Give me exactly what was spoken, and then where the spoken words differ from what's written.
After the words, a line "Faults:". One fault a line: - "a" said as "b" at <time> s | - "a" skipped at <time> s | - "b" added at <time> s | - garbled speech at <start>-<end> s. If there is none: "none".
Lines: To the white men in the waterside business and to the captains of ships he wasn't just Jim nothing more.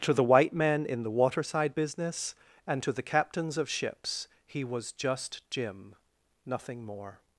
To the white men in the waterside business and to the captains of ships he was just Jim nothing more.
Faults:
- "wasn't" said as "was" at 4.6 s